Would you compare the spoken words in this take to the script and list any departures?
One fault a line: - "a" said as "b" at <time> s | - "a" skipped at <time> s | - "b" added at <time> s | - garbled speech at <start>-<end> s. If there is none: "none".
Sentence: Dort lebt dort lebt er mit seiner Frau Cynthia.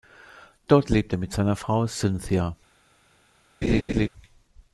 - "dort lebt" skipped at 1.1 s